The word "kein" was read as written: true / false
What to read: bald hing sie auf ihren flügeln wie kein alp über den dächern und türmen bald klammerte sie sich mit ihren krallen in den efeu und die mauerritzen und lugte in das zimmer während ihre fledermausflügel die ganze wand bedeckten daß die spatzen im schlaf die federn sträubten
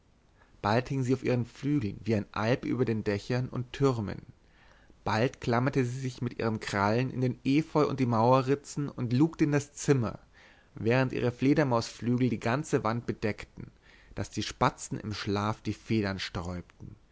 false